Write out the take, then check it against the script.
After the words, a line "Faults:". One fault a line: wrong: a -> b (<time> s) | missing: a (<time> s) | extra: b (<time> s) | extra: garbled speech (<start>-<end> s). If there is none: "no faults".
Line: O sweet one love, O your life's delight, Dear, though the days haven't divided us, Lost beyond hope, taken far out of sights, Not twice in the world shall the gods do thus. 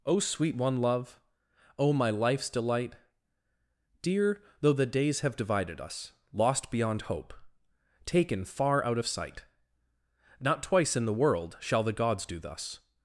O sweet one love, O my life's delight, Dear, though the days have divided us, Lost beyond hope, taken far out of sight, Not twice in the world shall the gods do thus.
Faults:
wrong: your -> my (1.9 s)
wrong: haven't -> have (5.2 s)
wrong: sights -> sight (9.1 s)